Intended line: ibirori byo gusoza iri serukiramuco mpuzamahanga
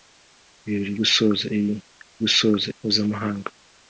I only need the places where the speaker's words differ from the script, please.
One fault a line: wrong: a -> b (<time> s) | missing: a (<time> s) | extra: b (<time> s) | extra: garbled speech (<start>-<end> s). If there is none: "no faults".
missing: byo (0.9 s)
wrong: serukiramuco -> gusoza (2.2 s)